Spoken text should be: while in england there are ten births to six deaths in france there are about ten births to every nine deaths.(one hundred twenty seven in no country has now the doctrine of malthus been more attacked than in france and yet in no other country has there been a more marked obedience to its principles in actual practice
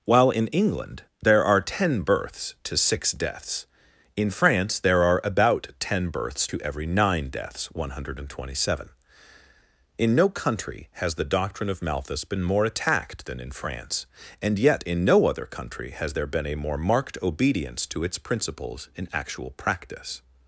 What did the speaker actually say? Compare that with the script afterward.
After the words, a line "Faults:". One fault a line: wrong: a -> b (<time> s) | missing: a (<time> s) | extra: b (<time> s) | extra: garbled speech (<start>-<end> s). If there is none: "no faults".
while in england there are ten births to six deaths in france there are about ten births to every nine deaths.(one hundred twenty seven in no country has the doctrine of malthus been more attacked than in france and yet in no other country has there been a more marked obedience to its principles in actual practice
Faults:
missing: now (11.2 s)